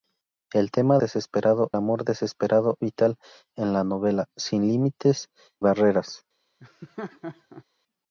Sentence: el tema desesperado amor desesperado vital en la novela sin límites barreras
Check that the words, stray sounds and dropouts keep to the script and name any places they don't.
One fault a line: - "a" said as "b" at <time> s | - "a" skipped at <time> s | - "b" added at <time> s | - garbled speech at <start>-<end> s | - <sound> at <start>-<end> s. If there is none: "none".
- laugh at 6.6-7.6 s